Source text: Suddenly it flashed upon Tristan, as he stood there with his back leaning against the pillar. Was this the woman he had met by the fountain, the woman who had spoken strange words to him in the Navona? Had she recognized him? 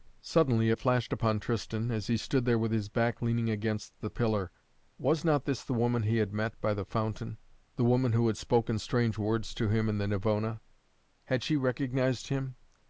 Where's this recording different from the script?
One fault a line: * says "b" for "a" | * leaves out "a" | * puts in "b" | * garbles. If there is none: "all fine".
* puts in "not"